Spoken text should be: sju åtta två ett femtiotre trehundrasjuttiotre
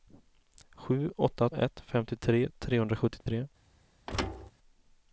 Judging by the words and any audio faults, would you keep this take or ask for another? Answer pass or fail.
fail